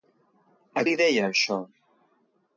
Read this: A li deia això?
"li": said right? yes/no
yes